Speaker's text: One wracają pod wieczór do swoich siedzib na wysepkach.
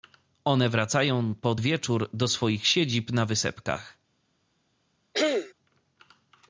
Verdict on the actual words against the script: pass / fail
pass